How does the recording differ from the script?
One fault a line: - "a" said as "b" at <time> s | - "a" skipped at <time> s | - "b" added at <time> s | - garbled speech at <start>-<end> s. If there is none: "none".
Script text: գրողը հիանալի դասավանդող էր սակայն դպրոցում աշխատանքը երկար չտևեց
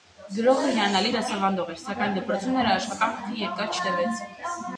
- "նրա" added at 2.6 s